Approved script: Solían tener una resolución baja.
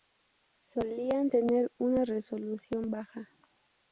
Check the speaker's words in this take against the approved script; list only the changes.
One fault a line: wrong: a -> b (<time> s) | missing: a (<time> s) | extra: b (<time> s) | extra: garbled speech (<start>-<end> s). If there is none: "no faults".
no faults